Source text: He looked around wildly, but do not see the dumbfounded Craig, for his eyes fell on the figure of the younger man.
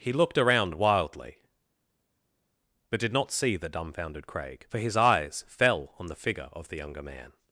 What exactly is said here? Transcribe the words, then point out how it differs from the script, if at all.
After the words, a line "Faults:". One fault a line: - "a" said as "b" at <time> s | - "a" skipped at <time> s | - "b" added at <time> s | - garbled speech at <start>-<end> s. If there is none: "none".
He looked around wildly, but did not see the dumbfounded Craig, for his eyes fell on the figure of the younger man.
Faults:
- "do" said as "did" at 3.0 s